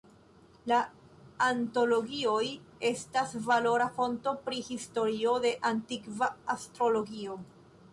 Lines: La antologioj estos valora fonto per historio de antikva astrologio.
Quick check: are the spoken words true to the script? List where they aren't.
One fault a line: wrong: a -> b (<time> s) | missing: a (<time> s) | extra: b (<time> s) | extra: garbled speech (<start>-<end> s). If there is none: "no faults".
wrong: estos -> estas (2.9 s)
wrong: per -> pri (4.5 s)